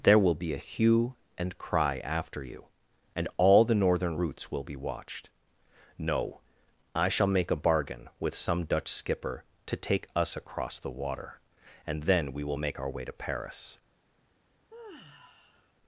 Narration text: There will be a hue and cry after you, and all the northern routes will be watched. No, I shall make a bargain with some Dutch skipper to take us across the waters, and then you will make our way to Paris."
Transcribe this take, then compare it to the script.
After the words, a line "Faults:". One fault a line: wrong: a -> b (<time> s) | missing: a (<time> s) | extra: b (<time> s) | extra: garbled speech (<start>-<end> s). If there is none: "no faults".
There will be a hue and cry after you, and all the northern routes will be watched. No, I shall make a bargain with some Dutch skipper to take us across the water, and then we will make our way to Paris."
Faults:
wrong: waters -> water (10.9 s)
wrong: you -> we (12.3 s)